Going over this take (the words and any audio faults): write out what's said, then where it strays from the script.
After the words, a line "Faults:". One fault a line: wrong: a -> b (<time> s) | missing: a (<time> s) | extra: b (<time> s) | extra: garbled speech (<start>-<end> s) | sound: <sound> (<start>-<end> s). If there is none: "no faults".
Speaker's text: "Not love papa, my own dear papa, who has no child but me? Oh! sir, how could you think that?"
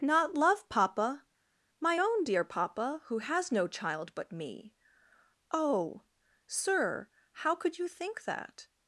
"Not love papa, my own dear papa, who has no child but me? Oh! sir, how could you think that?"
Faults:
no faults